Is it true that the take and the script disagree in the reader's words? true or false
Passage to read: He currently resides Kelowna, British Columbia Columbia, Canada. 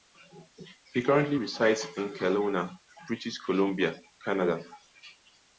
true